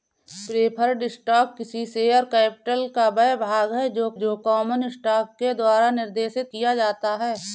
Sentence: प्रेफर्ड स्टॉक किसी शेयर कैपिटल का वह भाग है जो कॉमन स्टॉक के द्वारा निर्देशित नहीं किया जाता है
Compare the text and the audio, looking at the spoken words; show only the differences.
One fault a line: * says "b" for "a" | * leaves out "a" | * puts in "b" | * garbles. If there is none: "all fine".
* puts in "जो"
* leaves out "नहीं"